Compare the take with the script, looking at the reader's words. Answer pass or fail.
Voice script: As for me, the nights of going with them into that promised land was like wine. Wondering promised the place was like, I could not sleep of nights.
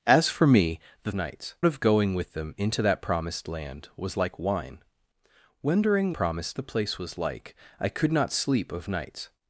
pass